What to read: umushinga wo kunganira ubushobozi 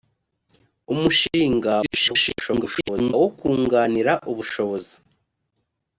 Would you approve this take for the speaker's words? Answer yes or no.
no